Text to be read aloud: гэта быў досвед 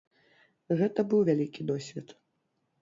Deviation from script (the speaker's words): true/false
true